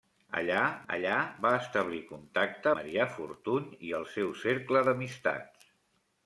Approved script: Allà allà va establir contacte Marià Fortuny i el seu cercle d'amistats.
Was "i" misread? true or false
false